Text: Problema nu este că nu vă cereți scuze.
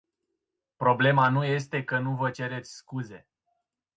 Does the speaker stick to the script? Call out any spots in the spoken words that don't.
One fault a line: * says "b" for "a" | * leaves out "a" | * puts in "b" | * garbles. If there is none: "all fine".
all fine